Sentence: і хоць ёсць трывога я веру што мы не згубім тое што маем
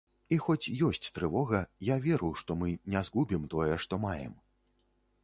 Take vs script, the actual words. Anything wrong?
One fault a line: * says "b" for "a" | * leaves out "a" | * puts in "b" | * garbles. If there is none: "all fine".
all fine